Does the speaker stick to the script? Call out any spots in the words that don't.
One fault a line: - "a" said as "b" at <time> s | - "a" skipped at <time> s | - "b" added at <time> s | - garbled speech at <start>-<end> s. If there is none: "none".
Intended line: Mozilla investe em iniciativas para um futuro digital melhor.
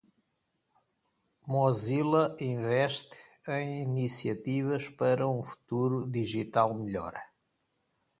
none